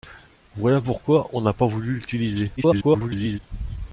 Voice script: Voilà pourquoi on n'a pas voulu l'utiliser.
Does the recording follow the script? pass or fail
fail